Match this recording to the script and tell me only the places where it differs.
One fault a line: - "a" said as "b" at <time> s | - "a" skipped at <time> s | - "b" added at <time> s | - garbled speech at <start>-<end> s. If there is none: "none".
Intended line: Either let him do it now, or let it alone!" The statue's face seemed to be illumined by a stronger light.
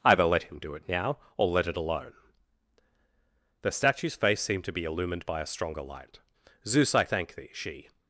- "Zeus I thank thee she" added at 6.6 s